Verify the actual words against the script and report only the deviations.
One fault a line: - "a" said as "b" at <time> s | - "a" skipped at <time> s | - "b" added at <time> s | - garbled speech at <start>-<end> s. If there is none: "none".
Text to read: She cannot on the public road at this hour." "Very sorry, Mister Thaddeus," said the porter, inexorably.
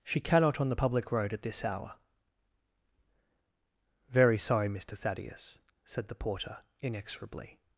none